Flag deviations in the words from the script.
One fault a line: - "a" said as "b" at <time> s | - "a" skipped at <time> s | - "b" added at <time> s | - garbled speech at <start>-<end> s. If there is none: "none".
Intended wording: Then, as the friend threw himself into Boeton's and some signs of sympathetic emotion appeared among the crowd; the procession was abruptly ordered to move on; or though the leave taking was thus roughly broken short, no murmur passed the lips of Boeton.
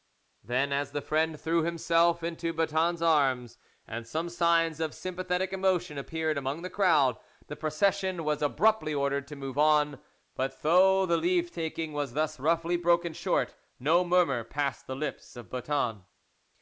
- "arms" added at 3.0 s
- "or" said as "but" at 10.3 s